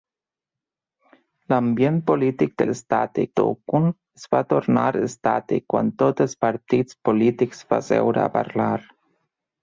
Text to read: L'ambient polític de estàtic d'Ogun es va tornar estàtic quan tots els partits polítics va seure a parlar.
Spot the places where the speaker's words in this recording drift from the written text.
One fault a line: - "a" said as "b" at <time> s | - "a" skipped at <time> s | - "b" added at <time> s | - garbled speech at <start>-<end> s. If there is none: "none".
none